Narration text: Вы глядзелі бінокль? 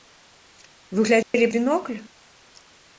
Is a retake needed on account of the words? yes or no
no